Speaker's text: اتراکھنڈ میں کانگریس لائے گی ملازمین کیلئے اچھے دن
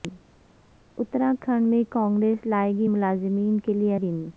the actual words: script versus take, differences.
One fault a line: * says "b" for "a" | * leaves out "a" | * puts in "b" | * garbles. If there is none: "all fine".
* leaves out "اچھے"